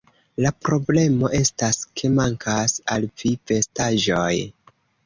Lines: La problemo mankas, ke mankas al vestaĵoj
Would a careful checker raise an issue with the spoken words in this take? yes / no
yes